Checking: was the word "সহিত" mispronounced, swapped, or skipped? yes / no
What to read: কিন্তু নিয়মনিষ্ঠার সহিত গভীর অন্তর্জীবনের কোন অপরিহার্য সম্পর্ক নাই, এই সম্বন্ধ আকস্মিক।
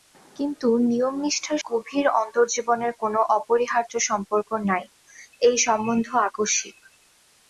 yes